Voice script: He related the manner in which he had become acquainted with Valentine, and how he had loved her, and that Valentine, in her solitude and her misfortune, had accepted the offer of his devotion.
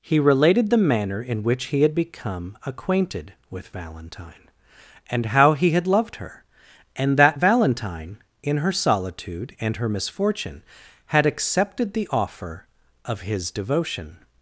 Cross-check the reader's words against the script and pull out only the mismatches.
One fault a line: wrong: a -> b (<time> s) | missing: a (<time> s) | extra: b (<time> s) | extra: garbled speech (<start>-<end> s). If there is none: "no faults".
no faults